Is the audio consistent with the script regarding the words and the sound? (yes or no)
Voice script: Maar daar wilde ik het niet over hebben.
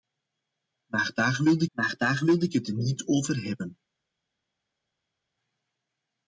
no